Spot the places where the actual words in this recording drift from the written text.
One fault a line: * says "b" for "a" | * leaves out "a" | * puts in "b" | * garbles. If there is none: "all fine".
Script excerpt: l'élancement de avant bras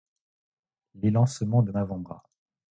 all fine